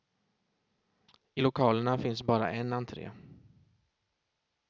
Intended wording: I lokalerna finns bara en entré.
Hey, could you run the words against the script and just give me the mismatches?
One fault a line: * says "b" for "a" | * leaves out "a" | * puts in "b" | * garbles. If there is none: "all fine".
all fine